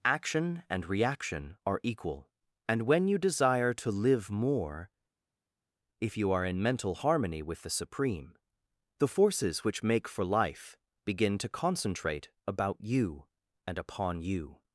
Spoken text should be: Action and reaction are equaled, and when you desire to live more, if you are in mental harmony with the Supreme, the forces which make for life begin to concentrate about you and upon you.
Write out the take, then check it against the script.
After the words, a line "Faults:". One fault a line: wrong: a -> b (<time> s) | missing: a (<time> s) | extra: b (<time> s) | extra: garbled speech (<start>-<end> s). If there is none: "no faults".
Action and reaction are equal, and when you desire to live more, if you are in mental harmony with the Supreme, the forces which make for life begin to concentrate about you and upon you.
Faults:
wrong: equaled -> equal (1.8 s)